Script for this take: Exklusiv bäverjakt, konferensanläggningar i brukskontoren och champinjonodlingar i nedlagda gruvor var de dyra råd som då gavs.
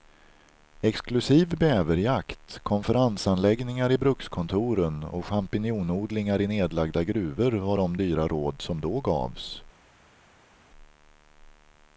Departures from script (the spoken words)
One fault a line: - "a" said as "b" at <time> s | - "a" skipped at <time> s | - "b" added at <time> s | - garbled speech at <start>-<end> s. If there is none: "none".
none